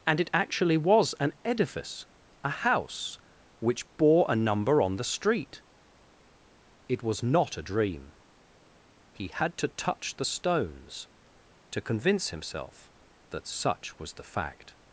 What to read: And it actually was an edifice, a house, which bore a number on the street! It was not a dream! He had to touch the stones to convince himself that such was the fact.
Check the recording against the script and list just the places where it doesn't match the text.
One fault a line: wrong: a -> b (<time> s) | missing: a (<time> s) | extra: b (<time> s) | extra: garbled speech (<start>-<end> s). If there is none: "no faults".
no faults